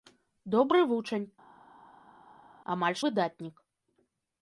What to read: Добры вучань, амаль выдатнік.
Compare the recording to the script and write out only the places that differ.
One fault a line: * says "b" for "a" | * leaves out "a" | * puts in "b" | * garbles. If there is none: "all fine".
all fine